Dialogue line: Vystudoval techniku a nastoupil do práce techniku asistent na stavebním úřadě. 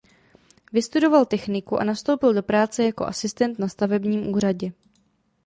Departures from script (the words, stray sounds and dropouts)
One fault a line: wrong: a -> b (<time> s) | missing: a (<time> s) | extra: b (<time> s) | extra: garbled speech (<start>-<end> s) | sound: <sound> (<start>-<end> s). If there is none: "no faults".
wrong: techniku -> jako (2.8 s)